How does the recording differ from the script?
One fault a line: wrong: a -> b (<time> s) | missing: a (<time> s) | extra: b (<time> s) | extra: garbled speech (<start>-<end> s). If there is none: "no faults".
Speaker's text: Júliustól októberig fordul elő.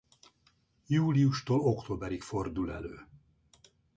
no faults